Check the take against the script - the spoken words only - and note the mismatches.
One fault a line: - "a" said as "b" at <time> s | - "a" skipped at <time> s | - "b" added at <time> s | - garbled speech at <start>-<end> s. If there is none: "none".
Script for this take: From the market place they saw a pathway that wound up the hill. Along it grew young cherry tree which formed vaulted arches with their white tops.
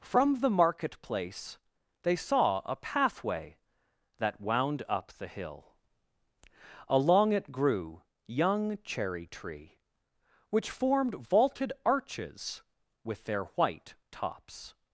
none